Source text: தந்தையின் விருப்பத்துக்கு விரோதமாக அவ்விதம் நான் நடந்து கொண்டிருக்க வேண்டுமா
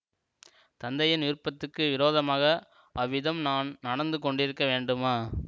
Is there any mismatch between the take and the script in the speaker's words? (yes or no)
no